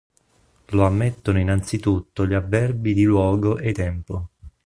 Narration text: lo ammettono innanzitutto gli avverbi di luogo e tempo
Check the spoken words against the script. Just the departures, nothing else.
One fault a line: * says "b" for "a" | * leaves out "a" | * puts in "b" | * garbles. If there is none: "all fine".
all fine